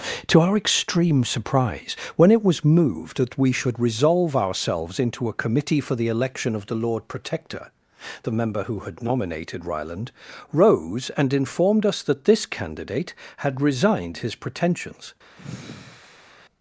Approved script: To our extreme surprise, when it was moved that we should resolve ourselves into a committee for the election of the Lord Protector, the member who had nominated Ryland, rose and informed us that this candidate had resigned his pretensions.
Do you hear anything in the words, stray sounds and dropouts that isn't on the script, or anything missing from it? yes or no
yes